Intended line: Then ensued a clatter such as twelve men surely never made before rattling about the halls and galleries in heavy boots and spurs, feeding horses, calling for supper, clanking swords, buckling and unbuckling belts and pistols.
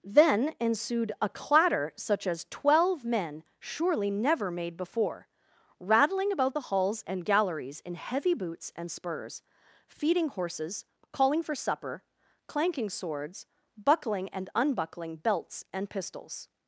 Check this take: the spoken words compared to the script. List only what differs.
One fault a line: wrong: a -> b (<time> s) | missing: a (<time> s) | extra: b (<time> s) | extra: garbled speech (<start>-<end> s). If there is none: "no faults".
no faults